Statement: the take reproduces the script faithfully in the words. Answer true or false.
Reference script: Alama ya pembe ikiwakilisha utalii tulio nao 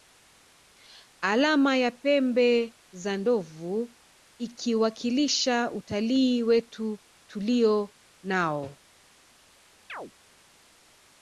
false